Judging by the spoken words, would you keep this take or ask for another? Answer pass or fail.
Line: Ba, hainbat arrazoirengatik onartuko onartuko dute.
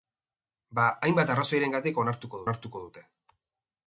pass